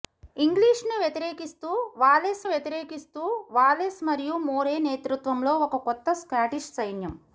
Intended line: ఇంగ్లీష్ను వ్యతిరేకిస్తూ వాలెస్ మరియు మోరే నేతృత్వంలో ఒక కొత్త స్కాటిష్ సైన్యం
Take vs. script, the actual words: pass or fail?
fail